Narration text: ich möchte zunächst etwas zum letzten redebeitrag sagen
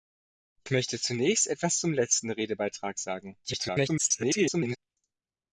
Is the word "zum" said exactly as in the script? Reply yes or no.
yes